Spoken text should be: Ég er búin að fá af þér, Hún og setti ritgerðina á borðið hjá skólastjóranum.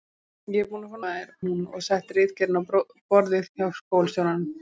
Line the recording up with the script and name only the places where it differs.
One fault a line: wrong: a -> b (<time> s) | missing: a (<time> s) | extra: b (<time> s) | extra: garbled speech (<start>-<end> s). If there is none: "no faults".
no faults